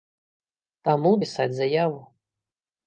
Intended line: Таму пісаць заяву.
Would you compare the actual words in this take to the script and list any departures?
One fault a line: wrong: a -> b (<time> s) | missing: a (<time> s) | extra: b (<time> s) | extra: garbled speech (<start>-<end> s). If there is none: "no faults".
no faults